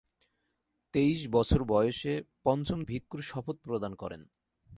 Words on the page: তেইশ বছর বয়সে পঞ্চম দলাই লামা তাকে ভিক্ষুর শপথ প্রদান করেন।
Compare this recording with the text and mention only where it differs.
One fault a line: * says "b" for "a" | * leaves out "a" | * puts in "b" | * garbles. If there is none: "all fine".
* leaves out "দলাই লামা তাকে"